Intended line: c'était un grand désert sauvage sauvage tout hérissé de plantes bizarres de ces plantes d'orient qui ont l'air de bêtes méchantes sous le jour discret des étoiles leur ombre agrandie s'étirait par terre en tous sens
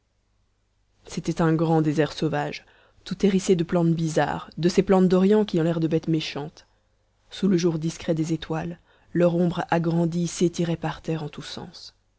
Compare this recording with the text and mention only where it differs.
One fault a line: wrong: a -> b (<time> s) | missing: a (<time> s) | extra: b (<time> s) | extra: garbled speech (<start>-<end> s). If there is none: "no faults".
missing: sauvage (2.6 s)